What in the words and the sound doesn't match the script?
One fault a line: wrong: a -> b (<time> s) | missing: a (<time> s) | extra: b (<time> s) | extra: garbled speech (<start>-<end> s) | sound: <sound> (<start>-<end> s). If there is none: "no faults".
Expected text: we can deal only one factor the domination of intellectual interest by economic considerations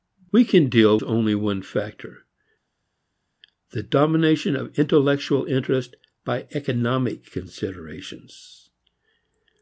no faults